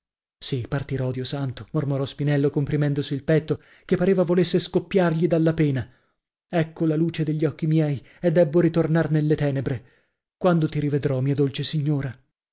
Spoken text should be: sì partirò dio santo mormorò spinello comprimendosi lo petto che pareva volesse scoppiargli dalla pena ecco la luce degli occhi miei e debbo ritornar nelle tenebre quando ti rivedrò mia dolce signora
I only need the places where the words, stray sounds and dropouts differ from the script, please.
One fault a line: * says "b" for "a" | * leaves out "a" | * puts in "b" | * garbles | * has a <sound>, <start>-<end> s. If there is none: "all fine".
* says "il" for "lo"